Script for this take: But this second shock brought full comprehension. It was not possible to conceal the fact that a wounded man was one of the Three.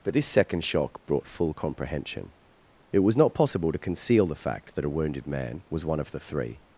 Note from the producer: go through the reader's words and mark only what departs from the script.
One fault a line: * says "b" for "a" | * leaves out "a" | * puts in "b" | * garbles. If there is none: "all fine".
all fine